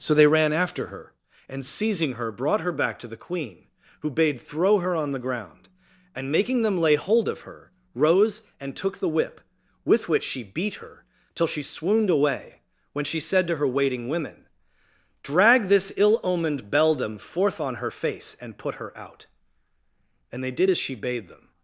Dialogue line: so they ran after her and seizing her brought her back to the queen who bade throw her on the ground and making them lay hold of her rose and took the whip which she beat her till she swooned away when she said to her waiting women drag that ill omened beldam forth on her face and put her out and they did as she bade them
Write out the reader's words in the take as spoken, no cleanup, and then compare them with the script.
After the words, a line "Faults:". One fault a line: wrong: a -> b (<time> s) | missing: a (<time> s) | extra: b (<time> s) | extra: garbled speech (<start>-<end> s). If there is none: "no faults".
so they ran after her and seizing her brought her back to the queen who bade throw her on the ground and making them lay hold of her rose and took the whip with which she beat her till she swooned away when she said to her waiting women drag this ill omened beldam forth on her face and put her out and they did as she bade them
Faults:
extra: with (9.8 s)
wrong: that -> this (15.7 s)